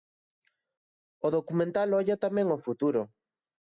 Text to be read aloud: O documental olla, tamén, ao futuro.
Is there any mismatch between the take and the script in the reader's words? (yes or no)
no